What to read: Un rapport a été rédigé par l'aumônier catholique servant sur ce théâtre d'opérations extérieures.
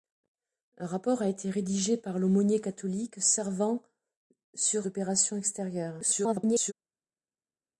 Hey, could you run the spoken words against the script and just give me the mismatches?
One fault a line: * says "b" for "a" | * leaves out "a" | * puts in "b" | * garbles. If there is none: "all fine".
* leaves out "ce théâtre"
* garbles